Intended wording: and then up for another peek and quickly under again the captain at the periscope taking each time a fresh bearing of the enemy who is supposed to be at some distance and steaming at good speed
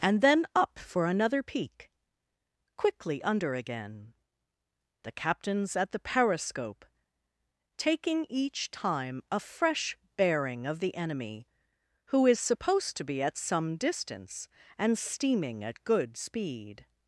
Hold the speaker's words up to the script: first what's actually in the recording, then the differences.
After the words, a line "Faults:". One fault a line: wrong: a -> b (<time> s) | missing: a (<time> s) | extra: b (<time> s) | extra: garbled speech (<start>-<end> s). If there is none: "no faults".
and then up for another peek quickly under again the captains at the periscope taking each time a fresh bearing of the enemy who is supposed to be at some distance and steaming at good speed
Faults:
missing: and (1.9 s)
wrong: captain -> captains (5.1 s)